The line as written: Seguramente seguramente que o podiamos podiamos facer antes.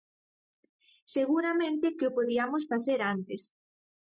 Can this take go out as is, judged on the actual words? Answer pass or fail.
fail